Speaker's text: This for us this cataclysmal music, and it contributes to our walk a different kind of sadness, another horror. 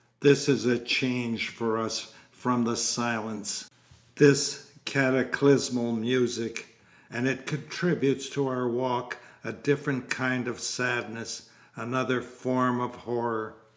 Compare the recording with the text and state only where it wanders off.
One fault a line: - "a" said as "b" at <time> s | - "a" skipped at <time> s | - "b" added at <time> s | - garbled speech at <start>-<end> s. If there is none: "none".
- "is a change" added at 0.5 s
- "from the silence" added at 2.3 s
- "form of" added at 12.2 s